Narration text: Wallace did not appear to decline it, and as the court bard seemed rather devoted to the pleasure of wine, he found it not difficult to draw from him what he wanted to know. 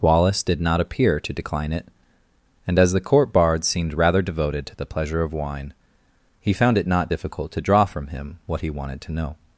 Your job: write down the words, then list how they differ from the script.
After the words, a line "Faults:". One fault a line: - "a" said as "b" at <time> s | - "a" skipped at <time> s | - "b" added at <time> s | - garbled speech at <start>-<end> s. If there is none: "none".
Wallace did not appear to decline it, and as the court bard seemed rather devoted to the pleasure of wine, he found it not difficult to draw from him what he wanted to know.
Faults:
none